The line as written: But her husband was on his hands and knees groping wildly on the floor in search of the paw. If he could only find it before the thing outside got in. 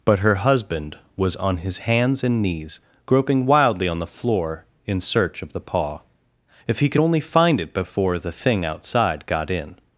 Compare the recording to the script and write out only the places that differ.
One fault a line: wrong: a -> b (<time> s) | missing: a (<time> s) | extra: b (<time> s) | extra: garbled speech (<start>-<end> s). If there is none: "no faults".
no faults